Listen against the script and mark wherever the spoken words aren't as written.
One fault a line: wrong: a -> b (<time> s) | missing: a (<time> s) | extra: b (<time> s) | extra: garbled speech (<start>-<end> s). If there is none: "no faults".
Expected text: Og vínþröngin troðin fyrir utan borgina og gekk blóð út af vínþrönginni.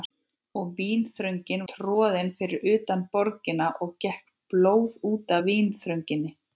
no faults